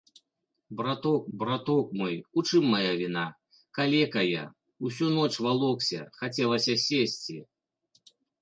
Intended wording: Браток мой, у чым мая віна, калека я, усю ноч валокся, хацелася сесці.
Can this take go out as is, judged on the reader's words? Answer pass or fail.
fail